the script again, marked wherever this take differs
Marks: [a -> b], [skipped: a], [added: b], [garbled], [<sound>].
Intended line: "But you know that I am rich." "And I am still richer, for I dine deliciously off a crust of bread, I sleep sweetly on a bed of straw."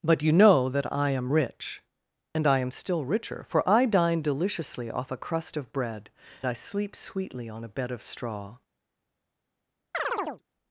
"But you know that I am rich." "And I am still richer, for I dine deliciously off a crust of bread, I sleep sweetly on a bed of straw." [chirp]